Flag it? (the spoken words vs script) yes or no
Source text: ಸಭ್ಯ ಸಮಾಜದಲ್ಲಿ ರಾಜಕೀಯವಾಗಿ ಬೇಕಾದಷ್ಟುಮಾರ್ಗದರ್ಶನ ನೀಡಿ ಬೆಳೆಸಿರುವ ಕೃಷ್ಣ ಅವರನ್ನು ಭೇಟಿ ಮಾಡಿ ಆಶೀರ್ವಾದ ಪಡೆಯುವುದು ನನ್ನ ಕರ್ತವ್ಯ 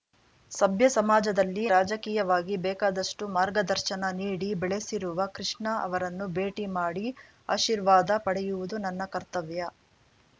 no